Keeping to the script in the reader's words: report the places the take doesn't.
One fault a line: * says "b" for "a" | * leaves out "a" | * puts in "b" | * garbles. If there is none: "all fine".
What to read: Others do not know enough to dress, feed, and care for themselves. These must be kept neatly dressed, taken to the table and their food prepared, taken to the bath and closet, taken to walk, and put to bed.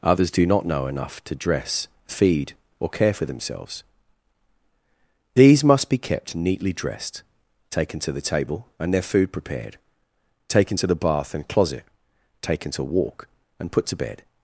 * says "or" for "and"